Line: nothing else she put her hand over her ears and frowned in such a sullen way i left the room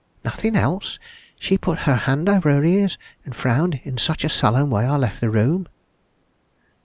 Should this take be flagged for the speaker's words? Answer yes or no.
no